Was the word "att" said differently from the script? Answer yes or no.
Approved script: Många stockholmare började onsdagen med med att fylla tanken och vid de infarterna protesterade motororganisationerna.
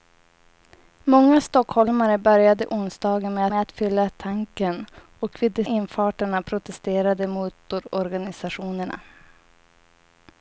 no